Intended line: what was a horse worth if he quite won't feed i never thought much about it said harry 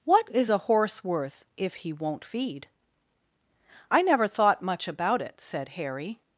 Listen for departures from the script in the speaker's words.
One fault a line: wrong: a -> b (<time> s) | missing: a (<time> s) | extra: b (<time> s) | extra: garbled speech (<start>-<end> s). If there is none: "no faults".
wrong: was -> is (0.3 s)
missing: quite (1.9 s)